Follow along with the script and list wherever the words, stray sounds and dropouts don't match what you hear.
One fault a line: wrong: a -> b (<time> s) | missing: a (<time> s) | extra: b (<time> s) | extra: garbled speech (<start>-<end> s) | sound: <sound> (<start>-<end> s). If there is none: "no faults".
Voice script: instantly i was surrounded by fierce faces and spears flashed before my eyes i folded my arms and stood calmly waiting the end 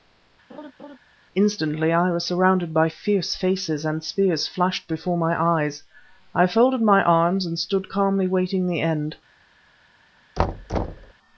sound: laugh (0.5-1.0 s)
sound: thud (10.4-11.1 s)